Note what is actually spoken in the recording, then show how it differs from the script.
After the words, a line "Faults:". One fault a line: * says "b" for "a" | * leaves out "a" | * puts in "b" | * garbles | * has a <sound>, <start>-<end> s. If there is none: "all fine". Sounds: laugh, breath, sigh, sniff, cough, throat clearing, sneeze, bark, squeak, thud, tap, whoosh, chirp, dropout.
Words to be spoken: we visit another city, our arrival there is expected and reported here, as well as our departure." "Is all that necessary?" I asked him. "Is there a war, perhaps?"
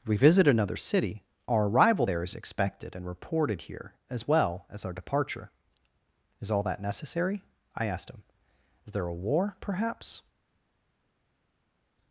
we visit another city, our arrival there is expected and reported here, as well as our departure." "Is all that necessary?" I asked him. "Is there a war, perhaps?"
Faults:
all fine